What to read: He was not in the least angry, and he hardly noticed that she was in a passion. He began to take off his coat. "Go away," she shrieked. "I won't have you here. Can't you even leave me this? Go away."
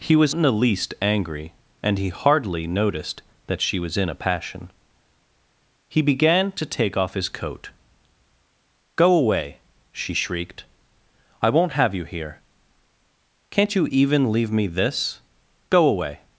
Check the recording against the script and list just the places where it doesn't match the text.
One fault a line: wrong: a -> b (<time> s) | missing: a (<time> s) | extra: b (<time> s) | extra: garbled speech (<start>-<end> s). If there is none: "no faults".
missing: not (0.3 s)